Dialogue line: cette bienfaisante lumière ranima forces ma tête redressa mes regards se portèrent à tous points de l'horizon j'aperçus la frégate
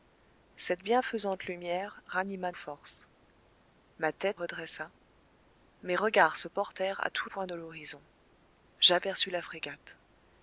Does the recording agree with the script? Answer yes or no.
yes